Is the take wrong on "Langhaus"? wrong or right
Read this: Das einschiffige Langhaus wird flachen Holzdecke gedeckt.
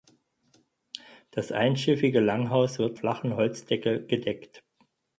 right